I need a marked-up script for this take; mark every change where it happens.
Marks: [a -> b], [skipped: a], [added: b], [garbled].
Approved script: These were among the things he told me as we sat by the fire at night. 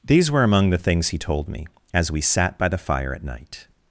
These were among the things he told me as we sat by the fire at night.